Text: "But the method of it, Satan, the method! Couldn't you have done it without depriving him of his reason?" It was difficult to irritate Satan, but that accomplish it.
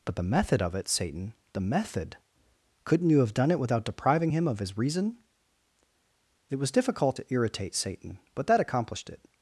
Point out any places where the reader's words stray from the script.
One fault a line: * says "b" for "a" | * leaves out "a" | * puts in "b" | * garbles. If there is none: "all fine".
* says "accomplished" for "accomplish"